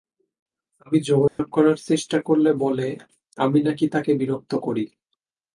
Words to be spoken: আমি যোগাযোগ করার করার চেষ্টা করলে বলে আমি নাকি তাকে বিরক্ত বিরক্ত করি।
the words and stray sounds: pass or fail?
fail